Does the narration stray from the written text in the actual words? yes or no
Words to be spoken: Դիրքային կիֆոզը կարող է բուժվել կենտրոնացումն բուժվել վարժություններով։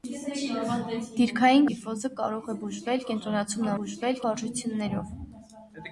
no